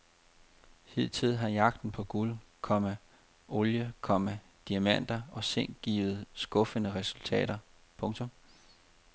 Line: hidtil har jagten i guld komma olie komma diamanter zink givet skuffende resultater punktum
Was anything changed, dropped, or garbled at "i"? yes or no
yes